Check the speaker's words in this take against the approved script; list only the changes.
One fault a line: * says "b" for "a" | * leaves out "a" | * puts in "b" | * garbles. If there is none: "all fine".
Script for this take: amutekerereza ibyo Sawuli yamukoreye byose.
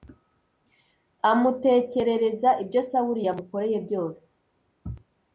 all fine